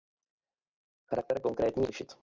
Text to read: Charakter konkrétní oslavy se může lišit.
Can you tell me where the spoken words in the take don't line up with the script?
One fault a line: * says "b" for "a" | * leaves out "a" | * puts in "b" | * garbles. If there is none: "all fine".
* leaves out "oslavy se může"